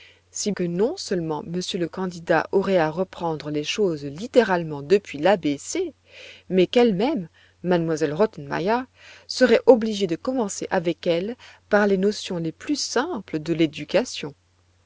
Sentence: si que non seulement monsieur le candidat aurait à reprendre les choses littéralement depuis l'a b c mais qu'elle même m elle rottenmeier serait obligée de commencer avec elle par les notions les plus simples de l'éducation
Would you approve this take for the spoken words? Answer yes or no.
yes